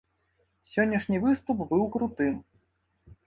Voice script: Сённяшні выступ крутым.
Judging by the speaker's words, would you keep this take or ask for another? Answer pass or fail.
fail